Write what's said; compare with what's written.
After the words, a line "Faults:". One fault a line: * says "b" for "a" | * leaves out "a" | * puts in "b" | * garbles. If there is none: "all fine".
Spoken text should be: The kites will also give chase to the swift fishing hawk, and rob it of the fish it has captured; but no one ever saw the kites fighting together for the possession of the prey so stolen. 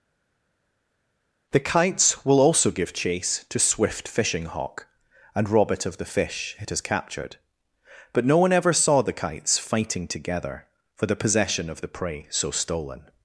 The kites will also give chase to swift fishing hawk, and rob it of the fish it has captured; but no one ever saw the kites fighting together for the possession of the prey so stolen.
Faults:
* leaves out "the"